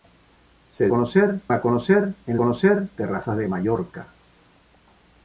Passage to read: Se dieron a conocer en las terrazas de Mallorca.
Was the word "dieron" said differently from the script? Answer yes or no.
yes